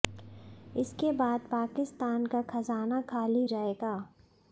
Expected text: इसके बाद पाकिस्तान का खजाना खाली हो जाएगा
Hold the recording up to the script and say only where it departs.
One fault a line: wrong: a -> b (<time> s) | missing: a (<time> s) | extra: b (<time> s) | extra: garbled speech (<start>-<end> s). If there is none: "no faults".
missing: हो (3.5 s)